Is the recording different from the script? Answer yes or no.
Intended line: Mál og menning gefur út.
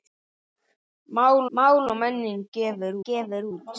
yes